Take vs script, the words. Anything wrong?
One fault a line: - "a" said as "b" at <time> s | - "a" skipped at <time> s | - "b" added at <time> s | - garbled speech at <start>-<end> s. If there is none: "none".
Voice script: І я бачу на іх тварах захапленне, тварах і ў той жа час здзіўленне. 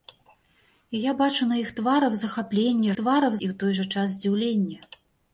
none